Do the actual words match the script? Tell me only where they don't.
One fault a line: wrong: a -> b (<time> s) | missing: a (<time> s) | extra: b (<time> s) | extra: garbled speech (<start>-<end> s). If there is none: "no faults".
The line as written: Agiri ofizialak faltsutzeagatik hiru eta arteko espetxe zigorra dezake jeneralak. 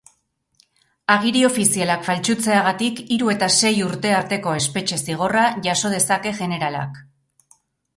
extra: sei urte (3.6 s)
extra: jaso (5.7 s)